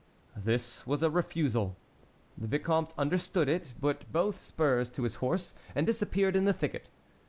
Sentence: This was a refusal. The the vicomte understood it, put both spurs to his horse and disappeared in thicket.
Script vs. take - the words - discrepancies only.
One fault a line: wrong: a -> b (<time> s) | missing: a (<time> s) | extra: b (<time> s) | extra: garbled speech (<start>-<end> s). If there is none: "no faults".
missing: the (2.5 s)
extra: the (6.4 s)